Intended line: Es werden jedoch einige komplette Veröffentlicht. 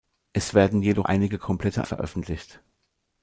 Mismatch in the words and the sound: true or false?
false